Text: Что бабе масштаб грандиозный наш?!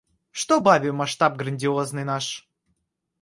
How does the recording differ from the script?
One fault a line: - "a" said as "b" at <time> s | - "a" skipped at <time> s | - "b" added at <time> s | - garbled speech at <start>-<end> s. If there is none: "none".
none